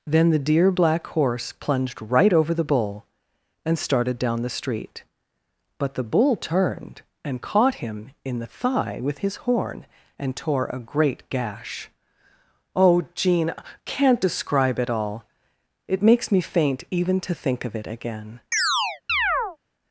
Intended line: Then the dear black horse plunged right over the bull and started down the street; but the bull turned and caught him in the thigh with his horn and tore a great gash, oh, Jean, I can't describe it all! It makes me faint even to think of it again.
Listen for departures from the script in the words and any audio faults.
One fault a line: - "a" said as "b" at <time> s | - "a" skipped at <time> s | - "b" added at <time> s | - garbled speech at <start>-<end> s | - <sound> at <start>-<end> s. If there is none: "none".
- "I" skipped at 13.5 s
- chirp at 18.5-19.6 s